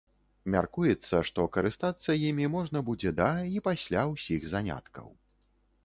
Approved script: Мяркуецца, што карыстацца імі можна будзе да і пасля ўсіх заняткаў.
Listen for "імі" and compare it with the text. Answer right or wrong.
right